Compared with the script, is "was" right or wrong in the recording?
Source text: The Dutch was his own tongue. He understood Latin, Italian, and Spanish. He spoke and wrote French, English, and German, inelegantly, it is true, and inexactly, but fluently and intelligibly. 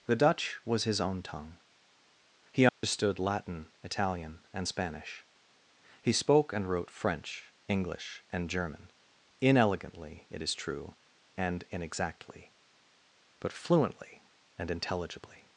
right